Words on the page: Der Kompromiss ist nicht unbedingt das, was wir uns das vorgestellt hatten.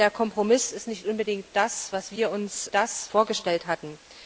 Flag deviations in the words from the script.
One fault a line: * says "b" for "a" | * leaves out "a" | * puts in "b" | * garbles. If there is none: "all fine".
all fine